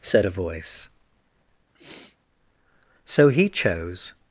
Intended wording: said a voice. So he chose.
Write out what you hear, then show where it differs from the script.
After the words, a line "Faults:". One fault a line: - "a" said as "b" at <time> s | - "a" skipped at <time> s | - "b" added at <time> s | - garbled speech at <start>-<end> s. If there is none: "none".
said a voice. So he chose.
Faults:
none